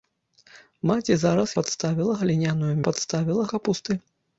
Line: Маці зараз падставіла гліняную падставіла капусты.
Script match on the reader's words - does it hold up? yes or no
yes